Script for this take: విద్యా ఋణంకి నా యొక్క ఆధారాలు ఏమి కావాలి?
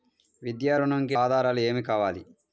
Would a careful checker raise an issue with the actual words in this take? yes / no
yes